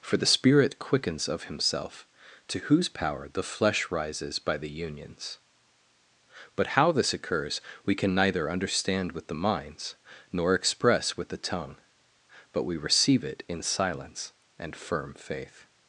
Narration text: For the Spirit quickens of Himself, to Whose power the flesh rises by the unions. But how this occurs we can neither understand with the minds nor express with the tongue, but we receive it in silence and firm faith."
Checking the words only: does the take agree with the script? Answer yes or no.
yes